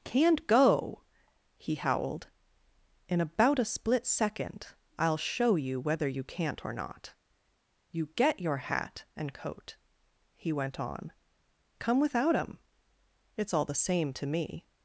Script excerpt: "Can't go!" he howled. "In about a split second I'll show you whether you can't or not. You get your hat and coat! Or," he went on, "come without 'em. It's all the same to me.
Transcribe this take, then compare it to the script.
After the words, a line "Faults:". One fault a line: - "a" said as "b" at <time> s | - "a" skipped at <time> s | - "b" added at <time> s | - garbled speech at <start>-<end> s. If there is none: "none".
"Can't go!" he howled. "In about a split second I'll show you whether you can't or not. You get your hat and coat," He went on, "come without 'em. It's all the same to me.
Faults:
- "Or" skipped at 9.8 s